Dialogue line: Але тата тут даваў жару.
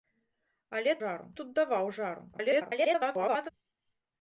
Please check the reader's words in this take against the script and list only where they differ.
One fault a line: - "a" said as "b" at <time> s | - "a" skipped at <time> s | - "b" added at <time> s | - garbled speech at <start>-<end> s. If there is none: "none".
- "тата" said as "жару" at 1.0 s
- garbled speech at 2.3-3.5 s